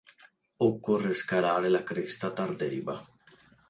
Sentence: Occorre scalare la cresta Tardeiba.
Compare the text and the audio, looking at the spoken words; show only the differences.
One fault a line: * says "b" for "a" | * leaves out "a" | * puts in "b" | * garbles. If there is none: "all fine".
all fine